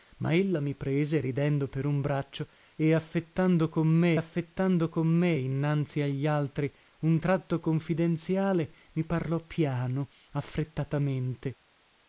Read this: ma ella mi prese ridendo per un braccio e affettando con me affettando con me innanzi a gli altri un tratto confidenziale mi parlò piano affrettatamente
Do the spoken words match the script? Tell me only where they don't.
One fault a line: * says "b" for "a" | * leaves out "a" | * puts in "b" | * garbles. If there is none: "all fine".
all fine